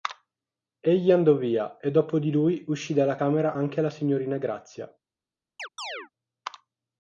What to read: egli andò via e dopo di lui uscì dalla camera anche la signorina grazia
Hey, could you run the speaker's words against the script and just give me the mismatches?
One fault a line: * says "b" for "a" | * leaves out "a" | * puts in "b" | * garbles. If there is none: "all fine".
all fine